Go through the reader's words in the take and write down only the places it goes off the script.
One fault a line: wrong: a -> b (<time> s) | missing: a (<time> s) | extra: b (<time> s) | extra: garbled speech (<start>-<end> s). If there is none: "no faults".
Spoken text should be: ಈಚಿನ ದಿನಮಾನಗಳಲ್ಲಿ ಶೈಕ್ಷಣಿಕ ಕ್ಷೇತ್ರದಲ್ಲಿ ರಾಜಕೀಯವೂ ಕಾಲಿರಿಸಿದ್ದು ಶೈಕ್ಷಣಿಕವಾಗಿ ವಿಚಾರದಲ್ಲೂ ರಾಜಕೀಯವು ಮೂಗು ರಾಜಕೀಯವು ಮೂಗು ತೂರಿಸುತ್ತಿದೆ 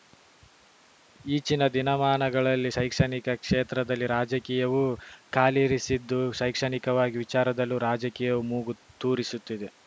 missing: ರಾಜಕೀಯವು ಮೂಗು (8.7 s)